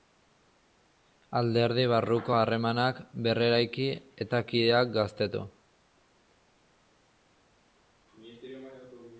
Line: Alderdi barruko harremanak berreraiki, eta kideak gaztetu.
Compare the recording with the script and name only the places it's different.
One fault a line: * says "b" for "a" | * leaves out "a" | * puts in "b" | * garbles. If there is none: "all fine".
all fine